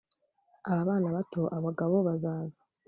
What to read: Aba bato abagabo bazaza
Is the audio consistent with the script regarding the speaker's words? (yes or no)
no